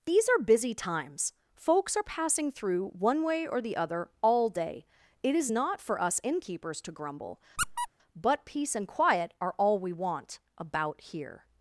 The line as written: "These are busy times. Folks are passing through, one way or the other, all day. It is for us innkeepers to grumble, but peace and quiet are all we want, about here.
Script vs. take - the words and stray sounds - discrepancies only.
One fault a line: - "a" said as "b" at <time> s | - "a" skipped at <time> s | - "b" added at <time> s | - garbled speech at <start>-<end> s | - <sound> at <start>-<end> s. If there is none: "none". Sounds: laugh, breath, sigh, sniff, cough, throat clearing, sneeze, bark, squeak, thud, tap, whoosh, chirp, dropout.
- "not" added at 5.5 s
- squeak at 7.6-7.9 s